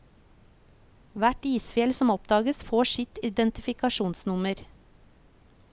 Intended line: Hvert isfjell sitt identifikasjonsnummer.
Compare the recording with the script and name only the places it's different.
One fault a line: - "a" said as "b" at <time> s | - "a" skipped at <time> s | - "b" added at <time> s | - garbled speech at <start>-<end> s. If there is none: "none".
- "som oppdages får" added at 2.0 s